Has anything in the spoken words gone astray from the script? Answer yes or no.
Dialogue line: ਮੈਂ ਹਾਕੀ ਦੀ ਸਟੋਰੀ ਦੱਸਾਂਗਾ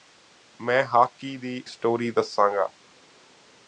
no